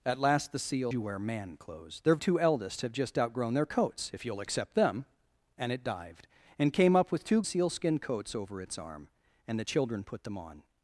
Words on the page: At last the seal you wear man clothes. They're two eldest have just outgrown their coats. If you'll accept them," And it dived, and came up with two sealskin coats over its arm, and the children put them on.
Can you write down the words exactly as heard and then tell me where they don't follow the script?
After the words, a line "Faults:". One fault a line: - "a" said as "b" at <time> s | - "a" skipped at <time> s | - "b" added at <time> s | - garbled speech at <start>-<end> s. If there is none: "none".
At last the seal you wear man clothes. They're two eldest have just outgrown their coats. If you'll accept them," And it dived, and came up with two sealskin coats over its arm, and the children put them on.
Faults:
none